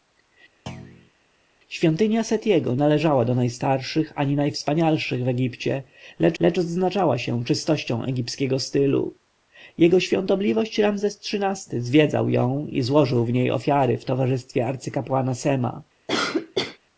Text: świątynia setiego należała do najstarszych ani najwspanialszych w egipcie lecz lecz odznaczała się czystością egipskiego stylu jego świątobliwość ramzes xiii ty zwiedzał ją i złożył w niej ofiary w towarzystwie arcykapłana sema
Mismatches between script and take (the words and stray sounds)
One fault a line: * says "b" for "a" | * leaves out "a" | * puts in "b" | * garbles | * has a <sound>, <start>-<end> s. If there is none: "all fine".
* has a thud, 0.7-1.1 s
* has a cough, 16.1-16.8 s